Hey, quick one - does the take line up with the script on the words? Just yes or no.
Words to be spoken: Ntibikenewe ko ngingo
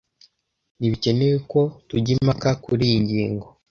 no